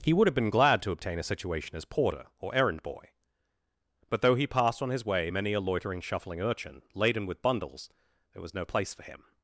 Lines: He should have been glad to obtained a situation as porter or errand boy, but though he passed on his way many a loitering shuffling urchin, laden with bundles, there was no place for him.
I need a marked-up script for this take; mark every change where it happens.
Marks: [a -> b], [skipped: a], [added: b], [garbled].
He [should -> would] have been glad to [obtained -> obtain] a situation as porter or errand boy, but though he passed on his way many a loitering shuffling urchin, laden with bundles, there was no place for him.